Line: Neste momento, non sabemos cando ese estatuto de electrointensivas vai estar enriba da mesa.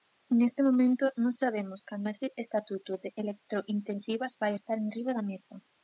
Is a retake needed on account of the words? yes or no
no